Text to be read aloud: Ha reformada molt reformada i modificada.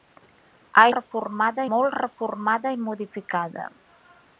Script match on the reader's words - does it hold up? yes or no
yes